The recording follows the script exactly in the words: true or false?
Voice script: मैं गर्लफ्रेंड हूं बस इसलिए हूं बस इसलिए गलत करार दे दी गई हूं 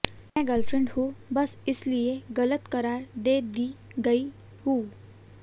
false